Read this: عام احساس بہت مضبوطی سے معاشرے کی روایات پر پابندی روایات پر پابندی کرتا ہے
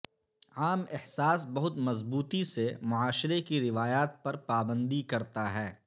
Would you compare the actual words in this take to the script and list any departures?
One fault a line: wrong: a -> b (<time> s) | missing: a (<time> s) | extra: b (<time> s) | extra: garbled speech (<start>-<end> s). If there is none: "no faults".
missing: روایات پر پابندی (5.0 s)